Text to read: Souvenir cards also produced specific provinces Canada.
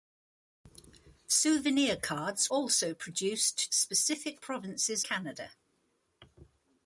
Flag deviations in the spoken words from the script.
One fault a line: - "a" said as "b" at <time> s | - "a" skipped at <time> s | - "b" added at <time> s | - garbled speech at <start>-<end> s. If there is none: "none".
none